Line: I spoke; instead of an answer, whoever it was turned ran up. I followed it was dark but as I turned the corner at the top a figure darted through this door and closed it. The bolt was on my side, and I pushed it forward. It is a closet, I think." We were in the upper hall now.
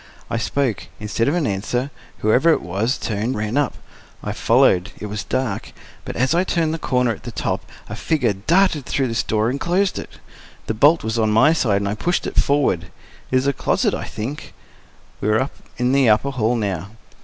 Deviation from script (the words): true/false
false